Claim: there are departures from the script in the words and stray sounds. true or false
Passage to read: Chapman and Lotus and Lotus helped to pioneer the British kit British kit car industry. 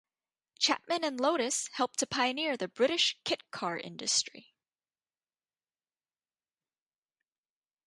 true